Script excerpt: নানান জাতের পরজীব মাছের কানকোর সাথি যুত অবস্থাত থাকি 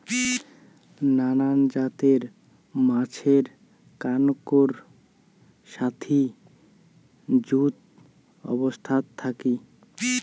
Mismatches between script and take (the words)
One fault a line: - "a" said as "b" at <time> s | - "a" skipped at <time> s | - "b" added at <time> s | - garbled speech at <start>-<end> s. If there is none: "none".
- "পরজীব" skipped at 2.2 s